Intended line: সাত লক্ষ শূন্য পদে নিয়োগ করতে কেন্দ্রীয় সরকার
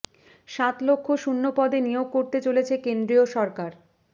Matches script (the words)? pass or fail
fail